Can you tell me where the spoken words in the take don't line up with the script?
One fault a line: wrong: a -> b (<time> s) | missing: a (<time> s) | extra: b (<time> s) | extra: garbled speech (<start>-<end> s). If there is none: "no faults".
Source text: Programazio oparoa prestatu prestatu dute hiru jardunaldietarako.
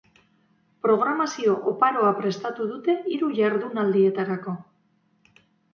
missing: prestatu (2.7 s)